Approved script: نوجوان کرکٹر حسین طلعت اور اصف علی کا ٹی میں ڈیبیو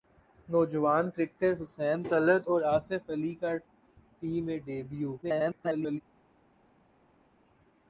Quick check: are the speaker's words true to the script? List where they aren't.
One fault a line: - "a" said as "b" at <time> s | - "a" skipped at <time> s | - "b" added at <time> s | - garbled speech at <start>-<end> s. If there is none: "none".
- garbled speech at 5.2-6.0 s